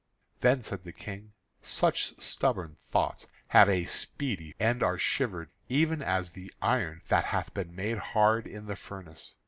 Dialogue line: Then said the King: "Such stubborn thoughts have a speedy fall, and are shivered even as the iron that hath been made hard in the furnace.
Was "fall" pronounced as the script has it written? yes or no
no